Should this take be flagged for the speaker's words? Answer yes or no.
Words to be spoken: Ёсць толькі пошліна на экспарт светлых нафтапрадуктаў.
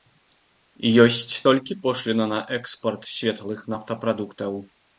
no